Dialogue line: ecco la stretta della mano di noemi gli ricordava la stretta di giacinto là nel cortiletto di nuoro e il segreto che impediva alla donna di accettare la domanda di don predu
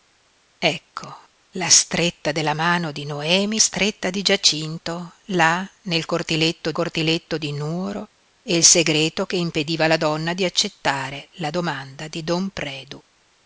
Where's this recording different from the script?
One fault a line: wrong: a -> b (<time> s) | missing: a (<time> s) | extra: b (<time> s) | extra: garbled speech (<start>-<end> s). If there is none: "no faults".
missing: gli ricordava la (3.6 s)
extra: cortiletto (6.7 s)